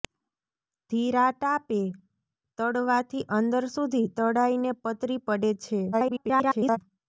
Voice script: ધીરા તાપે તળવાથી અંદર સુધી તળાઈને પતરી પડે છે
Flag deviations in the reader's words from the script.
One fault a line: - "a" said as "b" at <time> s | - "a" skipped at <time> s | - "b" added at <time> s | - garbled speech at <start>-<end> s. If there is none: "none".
- garbled speech at 5.9-6.8 s